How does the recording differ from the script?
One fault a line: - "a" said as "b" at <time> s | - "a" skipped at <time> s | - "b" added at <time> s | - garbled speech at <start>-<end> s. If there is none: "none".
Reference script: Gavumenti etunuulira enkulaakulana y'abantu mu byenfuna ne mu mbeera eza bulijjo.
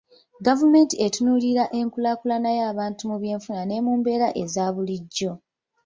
none